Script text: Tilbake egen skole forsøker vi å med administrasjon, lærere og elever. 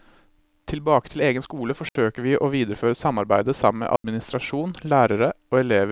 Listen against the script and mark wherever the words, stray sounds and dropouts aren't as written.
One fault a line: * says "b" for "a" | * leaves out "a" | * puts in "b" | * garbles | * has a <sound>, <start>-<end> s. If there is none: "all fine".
* puts in "til"
* has a dropout, 1.9-2.0 s
* puts in "videreføre samarbeidet sammen"
* has a dropout, 4.0-4.0 s